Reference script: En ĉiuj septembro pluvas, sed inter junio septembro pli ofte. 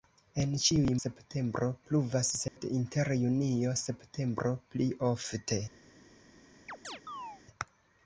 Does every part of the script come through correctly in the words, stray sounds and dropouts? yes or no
no